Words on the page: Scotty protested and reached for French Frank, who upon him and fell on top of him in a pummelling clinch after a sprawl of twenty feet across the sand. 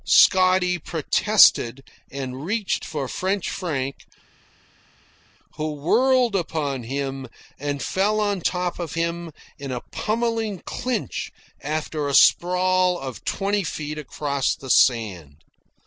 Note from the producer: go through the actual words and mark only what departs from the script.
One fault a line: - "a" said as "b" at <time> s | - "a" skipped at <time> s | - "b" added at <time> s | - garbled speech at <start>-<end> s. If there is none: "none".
- "whirled" added at 5.7 s